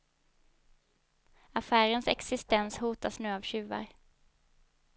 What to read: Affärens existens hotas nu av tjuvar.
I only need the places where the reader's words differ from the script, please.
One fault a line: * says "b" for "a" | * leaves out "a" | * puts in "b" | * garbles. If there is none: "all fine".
all fine